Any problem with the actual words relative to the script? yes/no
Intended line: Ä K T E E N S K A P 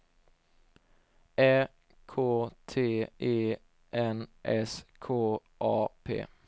yes